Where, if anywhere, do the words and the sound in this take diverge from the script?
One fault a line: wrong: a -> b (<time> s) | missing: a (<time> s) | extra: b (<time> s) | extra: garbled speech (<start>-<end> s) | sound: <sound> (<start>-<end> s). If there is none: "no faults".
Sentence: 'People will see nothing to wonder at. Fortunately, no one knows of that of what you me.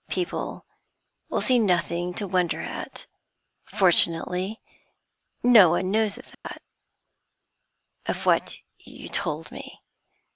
sound: dropout (6.3-6.4 s)
extra: told (9.1 s)